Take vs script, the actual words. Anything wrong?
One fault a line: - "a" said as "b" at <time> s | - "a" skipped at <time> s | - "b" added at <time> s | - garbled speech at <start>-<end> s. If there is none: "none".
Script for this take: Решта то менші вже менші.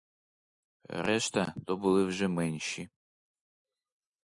- "менші" said as "були" at 1.8 s